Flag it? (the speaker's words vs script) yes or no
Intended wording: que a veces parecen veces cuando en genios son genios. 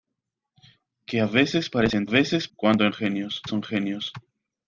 no